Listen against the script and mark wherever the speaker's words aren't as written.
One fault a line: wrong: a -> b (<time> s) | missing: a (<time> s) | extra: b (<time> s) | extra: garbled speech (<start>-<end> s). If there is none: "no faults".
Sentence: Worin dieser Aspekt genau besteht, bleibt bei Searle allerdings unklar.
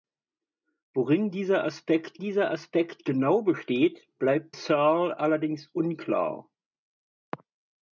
extra: dieser Aspekt (2.2 s)
missing: bei (4.5 s)